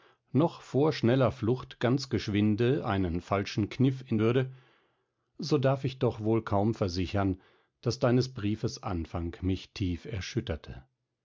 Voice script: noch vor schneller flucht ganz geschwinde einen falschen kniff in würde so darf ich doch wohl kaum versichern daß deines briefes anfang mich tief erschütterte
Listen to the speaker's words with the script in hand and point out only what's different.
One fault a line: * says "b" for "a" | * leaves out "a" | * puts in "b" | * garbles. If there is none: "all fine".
all fine